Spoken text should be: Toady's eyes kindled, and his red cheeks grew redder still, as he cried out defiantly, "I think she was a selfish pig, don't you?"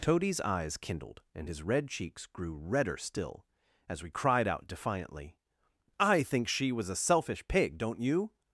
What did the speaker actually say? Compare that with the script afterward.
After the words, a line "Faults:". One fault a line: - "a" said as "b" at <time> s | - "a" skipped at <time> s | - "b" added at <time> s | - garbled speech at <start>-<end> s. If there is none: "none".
Toady's eyes kindled, and his red cheeks grew redder still, as we cried out defiantly, "I think she was a selfish pig, don't you?"
Faults:
- "he" said as "we" at 4.0 s